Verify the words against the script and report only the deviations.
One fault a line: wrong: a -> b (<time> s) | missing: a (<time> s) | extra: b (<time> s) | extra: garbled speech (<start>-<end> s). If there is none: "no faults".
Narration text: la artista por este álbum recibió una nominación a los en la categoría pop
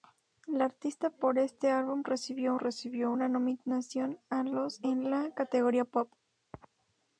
extra: recibió (2.6 s)